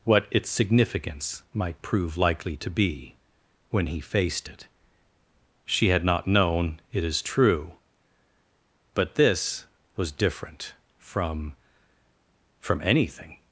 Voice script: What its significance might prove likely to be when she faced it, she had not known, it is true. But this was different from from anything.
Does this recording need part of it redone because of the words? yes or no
yes